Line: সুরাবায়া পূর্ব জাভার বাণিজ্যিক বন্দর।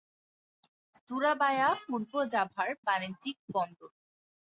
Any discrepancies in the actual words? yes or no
no